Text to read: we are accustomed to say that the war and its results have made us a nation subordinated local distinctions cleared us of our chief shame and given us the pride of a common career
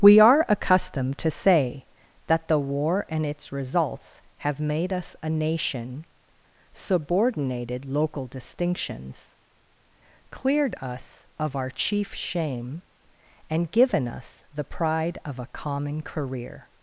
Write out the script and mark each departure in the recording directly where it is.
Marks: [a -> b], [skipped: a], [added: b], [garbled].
we are accustomed to say that the war and its results have made us a nation subordinated local distinctions cleared us of our chief shame and given us the pride of a common career